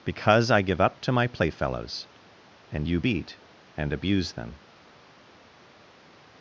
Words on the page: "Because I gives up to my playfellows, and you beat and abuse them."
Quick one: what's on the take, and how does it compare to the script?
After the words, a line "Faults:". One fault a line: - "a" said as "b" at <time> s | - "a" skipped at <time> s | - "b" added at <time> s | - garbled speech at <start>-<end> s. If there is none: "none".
"Because I give up to my playfellows, and you beat and abuse them."
Faults:
- "gives" said as "give" at 0.6 s